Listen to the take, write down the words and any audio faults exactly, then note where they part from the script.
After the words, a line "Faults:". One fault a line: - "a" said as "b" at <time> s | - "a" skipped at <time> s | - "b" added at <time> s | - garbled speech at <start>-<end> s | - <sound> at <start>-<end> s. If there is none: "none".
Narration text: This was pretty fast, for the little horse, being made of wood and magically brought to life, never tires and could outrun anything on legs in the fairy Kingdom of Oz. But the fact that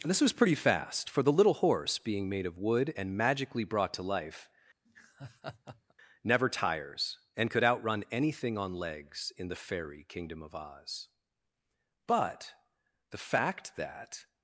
This was pretty fast, for the little horse, being made of wood and magically brought to life, never tires and could outrun anything on legs in the fairy Kingdom of Oz. But the fact that
Faults:
- laugh at 4.9-5.9 s